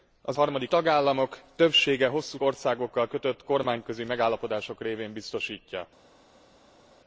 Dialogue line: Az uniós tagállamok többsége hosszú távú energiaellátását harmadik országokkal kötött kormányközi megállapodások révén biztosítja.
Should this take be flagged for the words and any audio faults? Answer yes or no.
yes